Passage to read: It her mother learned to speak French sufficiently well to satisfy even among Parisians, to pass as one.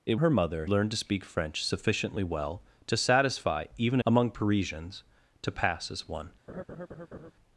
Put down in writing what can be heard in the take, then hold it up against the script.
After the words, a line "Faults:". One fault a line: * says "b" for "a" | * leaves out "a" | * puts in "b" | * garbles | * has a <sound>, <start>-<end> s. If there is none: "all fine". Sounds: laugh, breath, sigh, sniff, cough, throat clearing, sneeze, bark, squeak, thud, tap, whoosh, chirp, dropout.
It her mother learned to speak French sufficiently well to satisfy even among Parisians, to pass as one.
Faults:
* has a laugh, 6.5-7.3 s